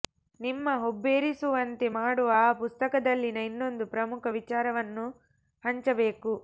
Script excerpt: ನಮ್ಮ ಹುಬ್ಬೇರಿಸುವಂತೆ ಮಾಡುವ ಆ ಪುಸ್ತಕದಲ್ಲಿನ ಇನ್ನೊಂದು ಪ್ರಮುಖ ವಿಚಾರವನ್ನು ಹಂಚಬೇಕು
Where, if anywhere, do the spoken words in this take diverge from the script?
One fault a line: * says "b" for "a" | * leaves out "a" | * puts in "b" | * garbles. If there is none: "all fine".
* says "ನಿಮ್ಮ" for "ನಮ್ಮ"